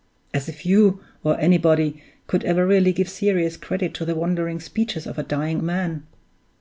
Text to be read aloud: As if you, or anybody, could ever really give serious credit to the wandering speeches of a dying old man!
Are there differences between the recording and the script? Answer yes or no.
yes